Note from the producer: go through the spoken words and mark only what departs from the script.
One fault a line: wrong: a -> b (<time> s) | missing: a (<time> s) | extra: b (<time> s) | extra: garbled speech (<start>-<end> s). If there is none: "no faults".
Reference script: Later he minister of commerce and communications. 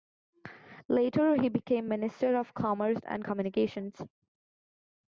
extra: became (1.5 s)